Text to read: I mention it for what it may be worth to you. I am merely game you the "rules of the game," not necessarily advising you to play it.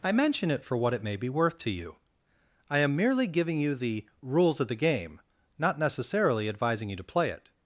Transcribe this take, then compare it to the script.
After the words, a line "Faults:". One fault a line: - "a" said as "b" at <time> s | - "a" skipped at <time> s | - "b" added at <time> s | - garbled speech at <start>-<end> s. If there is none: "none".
I mention it for what it may be worth to you. I am merely giving you the "rules of the game," not necessarily advising you to play it.
Faults:
- "game" said as "giving" at 3.3 s